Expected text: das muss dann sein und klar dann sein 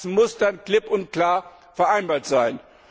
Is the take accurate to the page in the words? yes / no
no